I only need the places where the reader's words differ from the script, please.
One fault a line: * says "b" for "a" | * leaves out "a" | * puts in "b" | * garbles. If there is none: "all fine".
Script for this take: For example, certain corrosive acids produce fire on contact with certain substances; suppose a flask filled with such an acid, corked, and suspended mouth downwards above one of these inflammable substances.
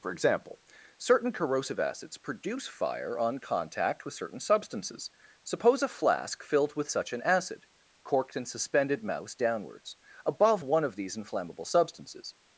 * says "mouse" for "mouth"